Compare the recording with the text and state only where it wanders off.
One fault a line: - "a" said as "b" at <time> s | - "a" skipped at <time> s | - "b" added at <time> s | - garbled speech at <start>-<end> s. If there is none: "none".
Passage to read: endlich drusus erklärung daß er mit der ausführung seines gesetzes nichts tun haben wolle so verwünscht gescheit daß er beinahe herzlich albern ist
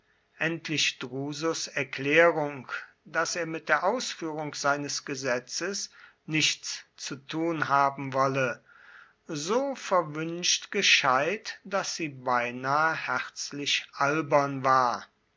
- "zu" added at 7.0 s
- "er" said as "sie" at 12.0 s
- "ist" said as "war" at 14.6 s